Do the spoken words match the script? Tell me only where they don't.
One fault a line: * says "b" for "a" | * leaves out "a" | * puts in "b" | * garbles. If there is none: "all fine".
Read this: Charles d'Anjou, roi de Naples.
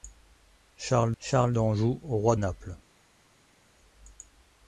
* puts in "charles"
* leaves out "de"